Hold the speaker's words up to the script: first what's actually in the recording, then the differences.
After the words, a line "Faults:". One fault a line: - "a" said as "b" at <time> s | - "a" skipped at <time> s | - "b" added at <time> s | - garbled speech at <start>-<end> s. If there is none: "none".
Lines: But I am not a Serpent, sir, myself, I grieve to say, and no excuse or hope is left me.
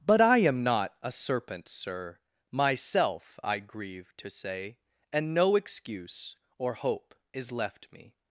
But I am not a Serpent, sir, myself, I grieve to say, and no excuse or hope is left me.
Faults:
none